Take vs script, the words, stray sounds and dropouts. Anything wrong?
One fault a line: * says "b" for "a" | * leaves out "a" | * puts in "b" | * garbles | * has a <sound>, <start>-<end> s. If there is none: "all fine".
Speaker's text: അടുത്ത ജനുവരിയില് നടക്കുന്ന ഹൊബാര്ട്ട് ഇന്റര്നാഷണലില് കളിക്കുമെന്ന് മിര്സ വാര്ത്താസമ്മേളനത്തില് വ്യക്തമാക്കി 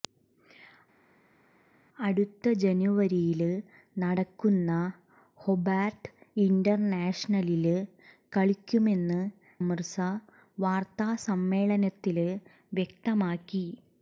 all fine